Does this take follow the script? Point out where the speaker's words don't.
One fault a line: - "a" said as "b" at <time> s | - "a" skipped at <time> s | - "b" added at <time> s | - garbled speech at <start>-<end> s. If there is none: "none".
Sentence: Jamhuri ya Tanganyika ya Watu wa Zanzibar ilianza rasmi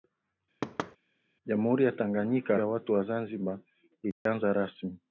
none